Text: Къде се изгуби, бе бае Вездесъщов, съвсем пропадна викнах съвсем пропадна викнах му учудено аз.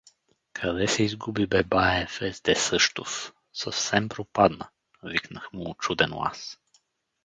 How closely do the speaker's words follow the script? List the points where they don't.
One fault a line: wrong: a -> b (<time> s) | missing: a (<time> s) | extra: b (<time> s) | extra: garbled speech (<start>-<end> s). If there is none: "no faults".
missing: съвсем пропадна викнах (5.5 s)